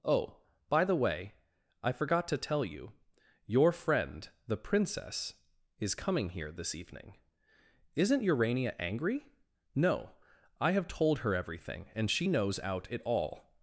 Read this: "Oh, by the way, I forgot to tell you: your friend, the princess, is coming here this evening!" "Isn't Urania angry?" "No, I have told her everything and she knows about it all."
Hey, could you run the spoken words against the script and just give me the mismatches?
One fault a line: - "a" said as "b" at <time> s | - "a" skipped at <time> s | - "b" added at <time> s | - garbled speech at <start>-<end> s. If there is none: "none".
- "about" said as "out" at 12.6 s